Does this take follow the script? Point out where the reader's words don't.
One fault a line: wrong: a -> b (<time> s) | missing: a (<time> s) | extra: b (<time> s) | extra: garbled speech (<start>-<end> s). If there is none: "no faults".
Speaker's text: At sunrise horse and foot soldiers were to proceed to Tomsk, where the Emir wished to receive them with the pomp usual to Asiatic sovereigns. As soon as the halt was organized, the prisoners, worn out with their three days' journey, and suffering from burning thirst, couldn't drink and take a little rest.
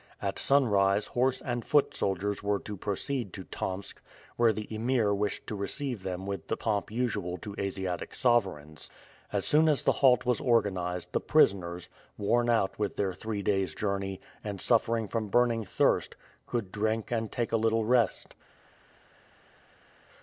wrong: couldn't -> could (16.4 s)